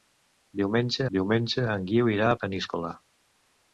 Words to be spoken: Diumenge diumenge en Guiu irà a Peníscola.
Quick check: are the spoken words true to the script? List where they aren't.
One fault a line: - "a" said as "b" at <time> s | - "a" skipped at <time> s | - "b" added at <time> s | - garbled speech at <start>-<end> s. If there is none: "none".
none